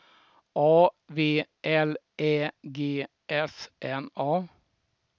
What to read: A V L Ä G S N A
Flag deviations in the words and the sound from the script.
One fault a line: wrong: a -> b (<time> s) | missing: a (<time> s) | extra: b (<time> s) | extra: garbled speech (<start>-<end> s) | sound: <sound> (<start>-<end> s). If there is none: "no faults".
no faults